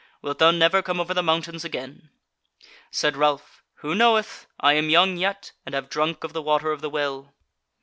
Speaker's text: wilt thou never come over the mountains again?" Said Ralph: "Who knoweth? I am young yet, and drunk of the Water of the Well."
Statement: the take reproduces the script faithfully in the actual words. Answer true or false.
false